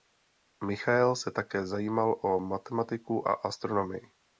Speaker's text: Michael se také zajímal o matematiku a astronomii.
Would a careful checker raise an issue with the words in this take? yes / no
no